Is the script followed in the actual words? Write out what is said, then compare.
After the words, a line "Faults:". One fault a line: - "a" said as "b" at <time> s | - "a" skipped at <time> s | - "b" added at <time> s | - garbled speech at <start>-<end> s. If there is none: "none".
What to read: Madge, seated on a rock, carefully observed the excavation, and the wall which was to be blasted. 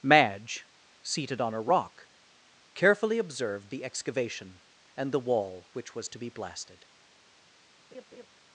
Madge, seated on a rock, carefully observed the excavation, and the wall which was to be blasted.
Faults:
none